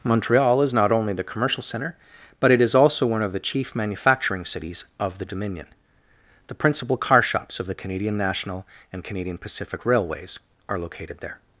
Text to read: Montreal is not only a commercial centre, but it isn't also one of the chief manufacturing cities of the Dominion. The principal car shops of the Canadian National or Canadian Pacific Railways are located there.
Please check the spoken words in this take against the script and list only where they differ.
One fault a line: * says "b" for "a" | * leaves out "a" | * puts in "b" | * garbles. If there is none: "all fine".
* says "the" for "a"
* says "is" for "isn't"
* says "and" for "or"